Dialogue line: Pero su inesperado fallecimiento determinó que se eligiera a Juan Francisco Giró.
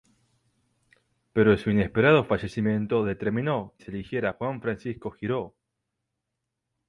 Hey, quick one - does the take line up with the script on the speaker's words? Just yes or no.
no